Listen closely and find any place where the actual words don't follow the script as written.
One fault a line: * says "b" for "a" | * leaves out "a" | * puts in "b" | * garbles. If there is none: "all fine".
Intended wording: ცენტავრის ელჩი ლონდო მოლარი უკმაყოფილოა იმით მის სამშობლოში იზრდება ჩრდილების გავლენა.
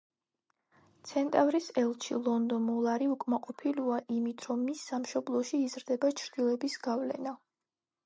* puts in "რომ"